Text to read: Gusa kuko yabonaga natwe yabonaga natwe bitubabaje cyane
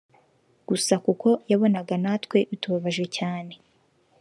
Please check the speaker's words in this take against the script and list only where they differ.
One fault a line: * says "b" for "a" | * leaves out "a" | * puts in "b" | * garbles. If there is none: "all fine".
* leaves out "yabonaga natwe"